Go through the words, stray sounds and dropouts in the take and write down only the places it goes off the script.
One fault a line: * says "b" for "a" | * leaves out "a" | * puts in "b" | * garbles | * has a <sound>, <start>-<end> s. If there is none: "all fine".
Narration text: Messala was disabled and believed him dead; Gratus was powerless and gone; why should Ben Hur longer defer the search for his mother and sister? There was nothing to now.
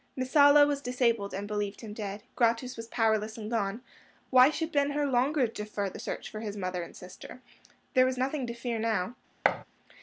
* puts in "fear"
* has a thud, 9.4-9.6 s